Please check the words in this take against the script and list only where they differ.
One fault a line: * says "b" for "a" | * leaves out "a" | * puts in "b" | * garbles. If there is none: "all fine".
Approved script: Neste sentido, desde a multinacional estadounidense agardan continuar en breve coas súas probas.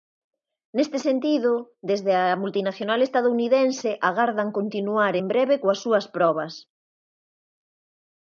all fine